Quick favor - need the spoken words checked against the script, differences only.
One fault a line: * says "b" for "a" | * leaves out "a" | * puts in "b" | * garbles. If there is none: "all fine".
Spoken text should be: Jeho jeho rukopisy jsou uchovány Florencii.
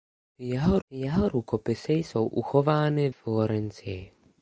all fine